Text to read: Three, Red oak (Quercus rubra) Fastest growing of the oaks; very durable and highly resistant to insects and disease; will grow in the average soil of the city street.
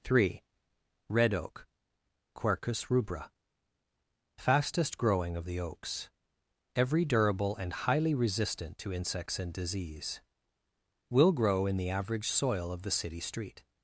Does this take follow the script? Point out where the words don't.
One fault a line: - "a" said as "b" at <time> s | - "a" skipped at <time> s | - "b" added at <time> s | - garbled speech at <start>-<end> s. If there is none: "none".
- "very" said as "every" at 6.7 s